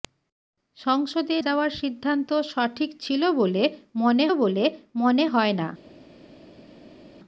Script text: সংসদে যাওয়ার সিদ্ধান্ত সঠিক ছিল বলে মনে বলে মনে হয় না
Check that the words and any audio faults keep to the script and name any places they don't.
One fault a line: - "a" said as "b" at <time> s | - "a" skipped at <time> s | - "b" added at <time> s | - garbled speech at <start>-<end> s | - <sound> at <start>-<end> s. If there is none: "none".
none